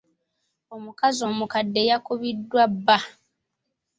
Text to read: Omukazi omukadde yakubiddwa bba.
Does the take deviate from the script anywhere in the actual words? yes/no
no